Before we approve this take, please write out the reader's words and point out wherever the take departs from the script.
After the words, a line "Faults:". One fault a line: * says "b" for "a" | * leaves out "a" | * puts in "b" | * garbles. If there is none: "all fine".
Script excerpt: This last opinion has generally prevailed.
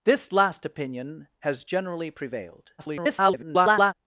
This last opinion has generally prevailed. [garbled]
Faults:
* garbles